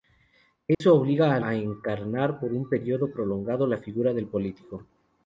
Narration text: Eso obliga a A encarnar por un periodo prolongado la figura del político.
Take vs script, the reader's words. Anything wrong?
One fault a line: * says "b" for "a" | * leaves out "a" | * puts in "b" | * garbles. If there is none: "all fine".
all fine